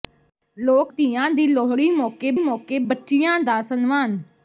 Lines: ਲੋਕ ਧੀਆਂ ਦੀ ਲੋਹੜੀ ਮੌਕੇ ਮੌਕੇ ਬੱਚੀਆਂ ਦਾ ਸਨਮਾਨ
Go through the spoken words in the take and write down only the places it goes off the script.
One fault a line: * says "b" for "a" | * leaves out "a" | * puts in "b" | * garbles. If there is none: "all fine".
all fine